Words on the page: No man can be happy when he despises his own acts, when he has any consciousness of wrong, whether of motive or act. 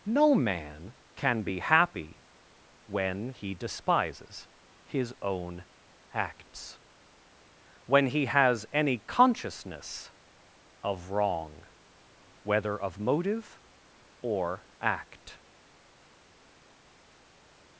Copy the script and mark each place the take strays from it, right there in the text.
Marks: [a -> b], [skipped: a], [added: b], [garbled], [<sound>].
No man can be happy when he despises his own acts, when he has any consciousness of wrong, whether of motive or act.